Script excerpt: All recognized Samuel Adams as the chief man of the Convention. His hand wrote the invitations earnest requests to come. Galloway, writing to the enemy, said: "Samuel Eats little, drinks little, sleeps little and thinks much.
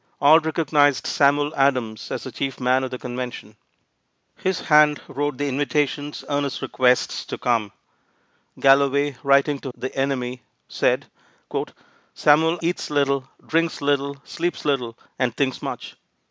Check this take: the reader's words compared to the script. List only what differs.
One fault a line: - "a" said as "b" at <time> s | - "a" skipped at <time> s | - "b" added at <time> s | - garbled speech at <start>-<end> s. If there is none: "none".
none